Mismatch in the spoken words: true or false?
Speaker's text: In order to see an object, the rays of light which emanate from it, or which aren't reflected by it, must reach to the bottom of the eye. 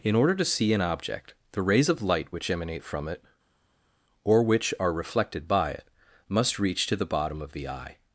true